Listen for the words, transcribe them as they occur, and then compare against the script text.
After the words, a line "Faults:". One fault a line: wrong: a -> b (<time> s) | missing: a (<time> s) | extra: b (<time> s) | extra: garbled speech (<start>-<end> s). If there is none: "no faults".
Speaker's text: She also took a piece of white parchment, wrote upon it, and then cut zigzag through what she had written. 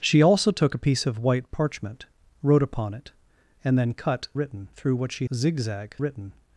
She also took a piece of white parchment, wrote upon it, and then cut written through what she zigzag written.
Faults:
wrong: zigzag -> written (4.3 s)
wrong: had -> zigzag (5.3 s)